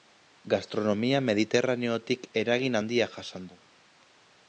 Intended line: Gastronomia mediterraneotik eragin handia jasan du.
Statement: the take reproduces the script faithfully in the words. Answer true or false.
true